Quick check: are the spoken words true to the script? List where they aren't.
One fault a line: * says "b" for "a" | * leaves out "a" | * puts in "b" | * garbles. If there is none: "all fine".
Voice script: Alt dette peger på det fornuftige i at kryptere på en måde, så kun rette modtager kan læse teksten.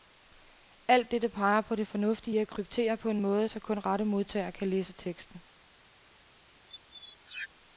all fine